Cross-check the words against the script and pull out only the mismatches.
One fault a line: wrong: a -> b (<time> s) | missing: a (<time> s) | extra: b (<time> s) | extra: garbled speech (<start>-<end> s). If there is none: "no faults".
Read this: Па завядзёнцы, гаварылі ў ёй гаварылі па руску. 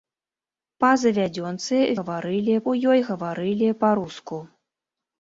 no faults